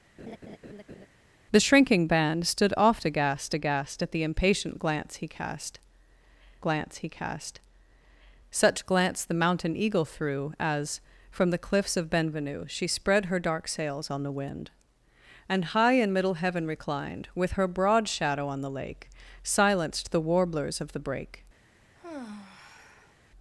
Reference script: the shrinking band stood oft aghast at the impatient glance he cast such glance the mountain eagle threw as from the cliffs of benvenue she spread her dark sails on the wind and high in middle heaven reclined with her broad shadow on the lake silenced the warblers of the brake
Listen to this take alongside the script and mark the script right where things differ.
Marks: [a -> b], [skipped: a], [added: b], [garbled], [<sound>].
[laugh] the shrinking band stood oft aghast [added: aghast] at the impatient glance he cast [added: glance he cast] such glance the mountain eagle threw as from the cliffs of benvenue she spread her dark sails on the wind and high in middle heaven reclined with her broad shadow on the lake silenced the warblers of the brake [sigh]